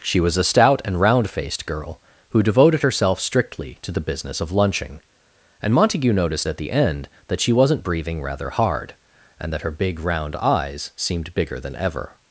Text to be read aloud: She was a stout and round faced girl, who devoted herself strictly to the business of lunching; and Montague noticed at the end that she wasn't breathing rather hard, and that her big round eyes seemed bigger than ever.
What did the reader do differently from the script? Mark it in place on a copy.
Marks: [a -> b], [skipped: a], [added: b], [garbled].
She was a stout and round faced girl, who devoted herself strictly to the business of lunching; and Montague noticed at the end that she wasn't breathing rather hard, and that her big round eyes seemed bigger than ever.